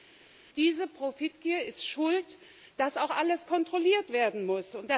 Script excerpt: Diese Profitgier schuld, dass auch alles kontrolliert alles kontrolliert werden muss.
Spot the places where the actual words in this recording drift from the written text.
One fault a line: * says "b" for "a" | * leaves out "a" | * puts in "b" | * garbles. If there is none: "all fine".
* puts in "ist"
* leaves out "alles kontrolliert"